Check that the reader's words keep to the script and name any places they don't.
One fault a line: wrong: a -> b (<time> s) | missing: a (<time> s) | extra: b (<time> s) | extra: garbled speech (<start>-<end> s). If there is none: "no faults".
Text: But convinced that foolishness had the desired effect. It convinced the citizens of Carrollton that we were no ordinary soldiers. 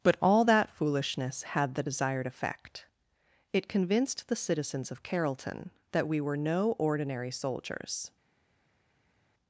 wrong: convinced -> all (0.2 s)